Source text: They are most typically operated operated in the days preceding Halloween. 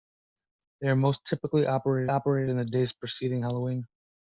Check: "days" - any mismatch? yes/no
no